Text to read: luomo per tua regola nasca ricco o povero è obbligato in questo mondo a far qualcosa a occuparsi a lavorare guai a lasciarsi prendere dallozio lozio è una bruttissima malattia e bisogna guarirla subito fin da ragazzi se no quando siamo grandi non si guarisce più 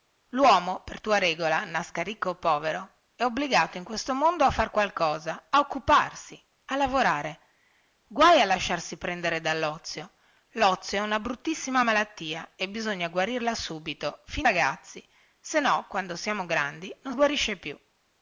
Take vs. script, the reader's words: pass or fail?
fail